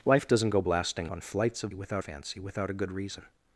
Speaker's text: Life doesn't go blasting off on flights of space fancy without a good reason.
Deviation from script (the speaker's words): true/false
true